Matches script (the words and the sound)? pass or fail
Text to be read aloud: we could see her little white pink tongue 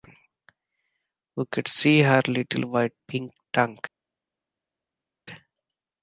pass